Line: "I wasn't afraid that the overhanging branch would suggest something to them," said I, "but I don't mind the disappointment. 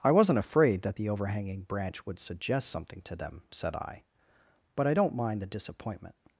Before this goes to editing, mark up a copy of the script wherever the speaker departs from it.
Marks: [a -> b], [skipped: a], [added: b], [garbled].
"I wasn't afraid that the overhanging branch would suggest something to them," said I, "but I don't mind the disappointment.